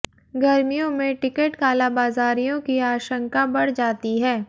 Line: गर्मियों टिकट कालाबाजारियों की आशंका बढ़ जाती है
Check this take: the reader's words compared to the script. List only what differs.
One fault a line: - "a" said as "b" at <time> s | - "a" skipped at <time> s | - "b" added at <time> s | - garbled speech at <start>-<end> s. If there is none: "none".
- "में" added at 0.9 s